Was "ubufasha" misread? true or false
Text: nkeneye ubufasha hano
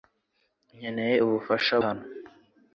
false